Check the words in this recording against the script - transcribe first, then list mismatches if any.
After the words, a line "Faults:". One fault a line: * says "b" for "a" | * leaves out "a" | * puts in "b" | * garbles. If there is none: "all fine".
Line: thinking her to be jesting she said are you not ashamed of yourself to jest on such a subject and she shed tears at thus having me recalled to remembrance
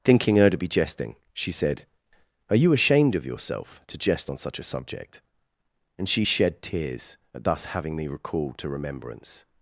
thinking her to be jesting she said are you ashamed of yourself to jest on such a subject and she shed tears at thus having me recalled to remembrance
Faults:
* leaves out "not"